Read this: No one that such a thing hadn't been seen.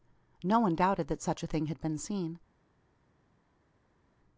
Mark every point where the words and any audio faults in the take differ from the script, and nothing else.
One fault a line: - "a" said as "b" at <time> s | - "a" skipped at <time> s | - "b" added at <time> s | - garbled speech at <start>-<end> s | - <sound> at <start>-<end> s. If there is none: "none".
- "doubted" added at 0.8 s
- "hadn't" said as "had" at 1.7 s